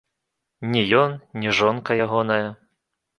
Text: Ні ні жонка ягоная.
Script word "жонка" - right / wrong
right